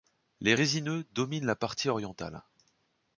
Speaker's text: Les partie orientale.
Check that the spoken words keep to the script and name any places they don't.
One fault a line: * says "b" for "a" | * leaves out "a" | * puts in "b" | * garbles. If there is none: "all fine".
* puts in "résineux dominent la"